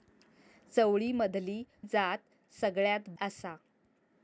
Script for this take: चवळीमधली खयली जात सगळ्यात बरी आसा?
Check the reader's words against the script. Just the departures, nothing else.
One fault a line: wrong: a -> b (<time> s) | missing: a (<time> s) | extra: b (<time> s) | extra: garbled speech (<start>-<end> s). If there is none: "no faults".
missing: खयली (1.6 s)
missing: बरी (3.1 s)